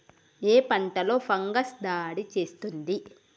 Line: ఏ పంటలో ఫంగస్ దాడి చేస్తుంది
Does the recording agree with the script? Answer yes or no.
yes